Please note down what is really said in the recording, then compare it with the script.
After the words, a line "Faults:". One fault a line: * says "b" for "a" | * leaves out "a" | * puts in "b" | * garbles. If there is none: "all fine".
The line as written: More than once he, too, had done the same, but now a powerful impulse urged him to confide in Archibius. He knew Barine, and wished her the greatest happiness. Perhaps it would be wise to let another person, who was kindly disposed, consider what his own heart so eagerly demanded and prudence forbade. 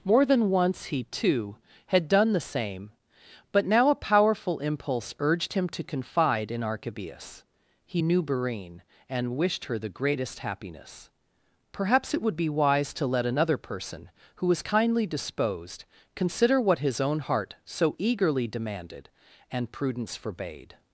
More than once he, too, had done the same, but now a powerful impulse urged him to confide in Archibius. He knew Barine, and wished her the greatest happiness. Perhaps it would be wise to let another person, who was kindly disposed, consider what his own heart so eagerly demanded and prudence forbade.
Faults:
all fine